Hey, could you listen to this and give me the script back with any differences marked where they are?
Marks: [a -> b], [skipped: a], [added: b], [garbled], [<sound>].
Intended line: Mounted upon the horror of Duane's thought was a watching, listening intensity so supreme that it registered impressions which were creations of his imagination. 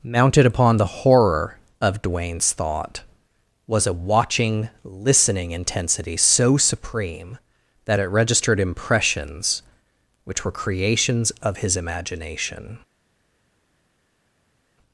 Mounted upon the horror of Duane's thought was a watching, listening intensity so supreme that it registered impressions which were creations of his imagination.